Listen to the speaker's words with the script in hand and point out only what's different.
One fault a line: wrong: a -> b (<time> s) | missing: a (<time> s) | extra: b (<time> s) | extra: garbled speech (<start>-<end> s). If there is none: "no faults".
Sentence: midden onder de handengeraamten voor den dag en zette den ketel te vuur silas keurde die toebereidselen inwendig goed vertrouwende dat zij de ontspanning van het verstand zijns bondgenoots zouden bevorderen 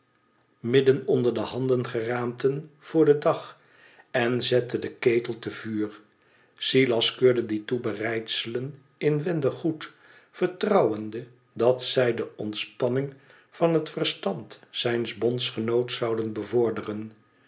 no faults